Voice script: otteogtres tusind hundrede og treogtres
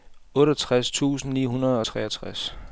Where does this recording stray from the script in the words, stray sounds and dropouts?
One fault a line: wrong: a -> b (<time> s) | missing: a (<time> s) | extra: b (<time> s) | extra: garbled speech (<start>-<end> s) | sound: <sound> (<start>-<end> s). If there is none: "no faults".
extra: ni (1.3 s)